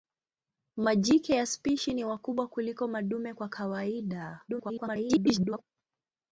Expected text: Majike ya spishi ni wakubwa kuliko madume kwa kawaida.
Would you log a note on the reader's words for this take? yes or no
yes